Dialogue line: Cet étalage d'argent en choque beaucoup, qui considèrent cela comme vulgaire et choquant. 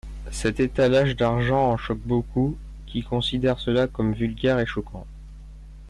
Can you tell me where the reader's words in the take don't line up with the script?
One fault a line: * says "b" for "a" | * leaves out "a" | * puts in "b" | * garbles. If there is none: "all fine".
all fine